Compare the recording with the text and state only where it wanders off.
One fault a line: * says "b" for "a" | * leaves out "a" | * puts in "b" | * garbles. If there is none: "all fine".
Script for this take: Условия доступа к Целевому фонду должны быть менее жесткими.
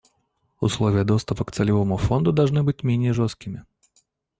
all fine